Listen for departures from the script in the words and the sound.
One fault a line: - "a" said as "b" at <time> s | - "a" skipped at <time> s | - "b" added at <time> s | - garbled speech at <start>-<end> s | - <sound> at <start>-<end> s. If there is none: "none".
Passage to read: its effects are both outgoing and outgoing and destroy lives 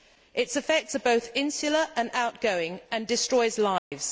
- "outgoing" said as "insular" at 1.4 s
- dropout at 3.8-3.9 s